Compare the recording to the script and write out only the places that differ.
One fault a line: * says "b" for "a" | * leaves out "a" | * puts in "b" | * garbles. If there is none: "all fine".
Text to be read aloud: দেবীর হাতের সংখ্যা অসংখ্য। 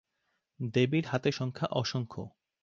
all fine